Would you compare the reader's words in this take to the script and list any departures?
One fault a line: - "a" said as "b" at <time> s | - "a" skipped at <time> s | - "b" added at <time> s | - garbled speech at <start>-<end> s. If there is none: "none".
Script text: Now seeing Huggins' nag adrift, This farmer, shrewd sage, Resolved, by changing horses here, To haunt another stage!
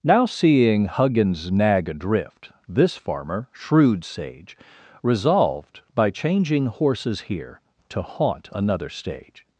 none